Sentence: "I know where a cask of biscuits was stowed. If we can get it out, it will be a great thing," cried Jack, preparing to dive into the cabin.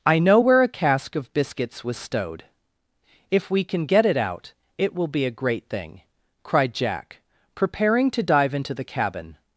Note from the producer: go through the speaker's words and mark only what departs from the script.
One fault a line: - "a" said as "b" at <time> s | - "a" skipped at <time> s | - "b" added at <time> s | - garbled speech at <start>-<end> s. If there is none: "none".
none